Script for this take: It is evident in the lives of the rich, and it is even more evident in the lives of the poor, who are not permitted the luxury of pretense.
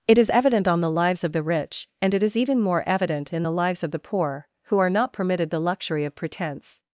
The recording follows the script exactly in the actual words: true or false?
false